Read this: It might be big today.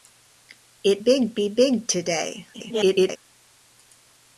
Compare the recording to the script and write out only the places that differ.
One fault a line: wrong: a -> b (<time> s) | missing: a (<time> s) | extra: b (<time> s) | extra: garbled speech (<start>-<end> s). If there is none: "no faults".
wrong: might -> big (1.0 s)
extra: garbled speech (2.5-3.2 s)